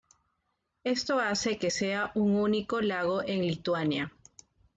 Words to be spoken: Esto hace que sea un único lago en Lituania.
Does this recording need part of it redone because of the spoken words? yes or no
no